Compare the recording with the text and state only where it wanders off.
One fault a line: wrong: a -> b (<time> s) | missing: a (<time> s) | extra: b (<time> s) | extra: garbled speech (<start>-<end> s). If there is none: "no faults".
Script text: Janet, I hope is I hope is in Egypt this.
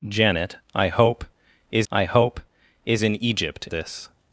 no faults